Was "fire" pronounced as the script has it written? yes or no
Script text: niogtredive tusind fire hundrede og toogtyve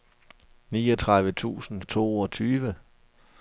no